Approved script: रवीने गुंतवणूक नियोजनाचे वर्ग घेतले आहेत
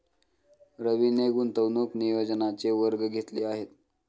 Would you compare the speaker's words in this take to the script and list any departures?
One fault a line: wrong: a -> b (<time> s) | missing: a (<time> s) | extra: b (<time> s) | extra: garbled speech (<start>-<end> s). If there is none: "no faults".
no faults